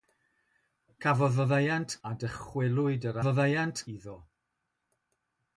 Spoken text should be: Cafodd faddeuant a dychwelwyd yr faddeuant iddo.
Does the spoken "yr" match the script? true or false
true